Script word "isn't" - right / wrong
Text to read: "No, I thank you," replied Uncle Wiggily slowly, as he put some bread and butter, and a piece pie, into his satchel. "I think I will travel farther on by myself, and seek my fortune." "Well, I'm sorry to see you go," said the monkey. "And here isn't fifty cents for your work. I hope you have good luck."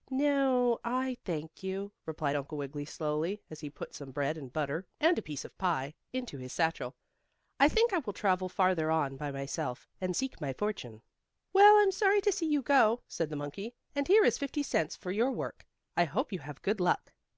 wrong